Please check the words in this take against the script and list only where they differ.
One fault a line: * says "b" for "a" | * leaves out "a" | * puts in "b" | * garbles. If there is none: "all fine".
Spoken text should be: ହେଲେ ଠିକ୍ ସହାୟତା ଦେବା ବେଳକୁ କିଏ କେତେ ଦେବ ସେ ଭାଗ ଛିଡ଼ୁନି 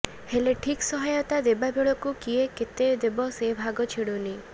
all fine